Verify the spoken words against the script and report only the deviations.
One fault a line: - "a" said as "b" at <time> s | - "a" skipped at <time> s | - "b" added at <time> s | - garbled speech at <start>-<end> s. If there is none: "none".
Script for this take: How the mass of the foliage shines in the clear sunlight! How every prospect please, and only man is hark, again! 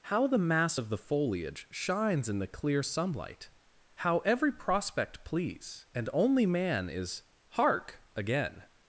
none